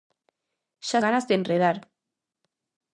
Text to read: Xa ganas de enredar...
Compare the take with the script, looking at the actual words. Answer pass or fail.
pass